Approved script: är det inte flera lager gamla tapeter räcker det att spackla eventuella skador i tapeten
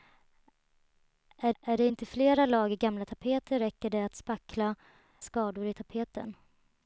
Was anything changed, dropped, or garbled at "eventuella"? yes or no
yes